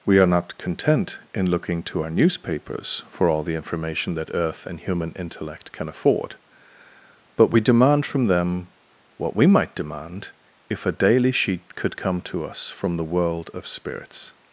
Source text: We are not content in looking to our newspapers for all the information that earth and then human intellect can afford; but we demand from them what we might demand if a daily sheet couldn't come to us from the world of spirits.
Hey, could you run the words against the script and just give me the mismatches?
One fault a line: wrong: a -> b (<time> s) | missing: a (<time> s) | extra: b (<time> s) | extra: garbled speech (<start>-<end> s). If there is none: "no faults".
missing: then (4.8 s)
wrong: couldn't -> could (11.7 s)